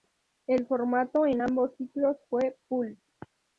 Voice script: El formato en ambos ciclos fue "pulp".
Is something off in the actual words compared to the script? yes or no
no